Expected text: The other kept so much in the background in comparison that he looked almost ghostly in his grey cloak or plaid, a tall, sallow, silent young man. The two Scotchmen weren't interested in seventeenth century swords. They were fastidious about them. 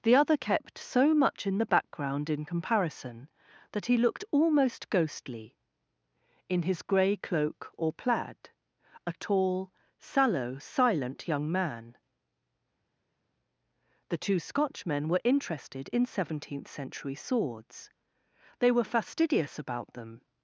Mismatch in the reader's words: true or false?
true